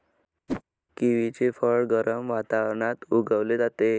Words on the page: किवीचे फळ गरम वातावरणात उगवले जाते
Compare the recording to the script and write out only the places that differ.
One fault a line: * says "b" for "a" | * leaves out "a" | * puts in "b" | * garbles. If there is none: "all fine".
all fine